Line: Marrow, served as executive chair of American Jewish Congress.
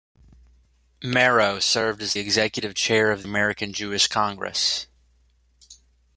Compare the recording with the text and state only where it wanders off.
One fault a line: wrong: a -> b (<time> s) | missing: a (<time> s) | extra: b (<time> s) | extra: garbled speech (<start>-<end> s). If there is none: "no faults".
no faults